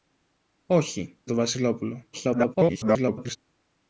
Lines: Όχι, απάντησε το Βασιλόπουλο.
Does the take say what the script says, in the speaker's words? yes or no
no